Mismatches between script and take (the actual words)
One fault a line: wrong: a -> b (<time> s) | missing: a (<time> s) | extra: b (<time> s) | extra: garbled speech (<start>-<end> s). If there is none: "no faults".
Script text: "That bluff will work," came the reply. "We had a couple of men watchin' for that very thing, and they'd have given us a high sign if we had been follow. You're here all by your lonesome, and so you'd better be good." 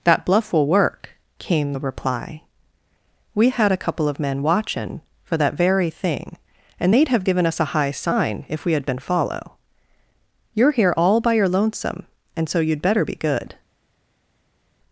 no faults